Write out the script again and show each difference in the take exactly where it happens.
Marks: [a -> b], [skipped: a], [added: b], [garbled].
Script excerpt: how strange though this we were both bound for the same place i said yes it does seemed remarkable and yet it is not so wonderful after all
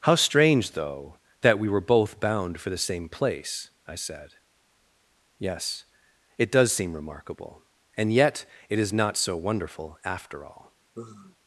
how strange though [this -> that] we were both bound for the same place i said yes it does [seemed -> seem] remarkable and yet it is not so wonderful after all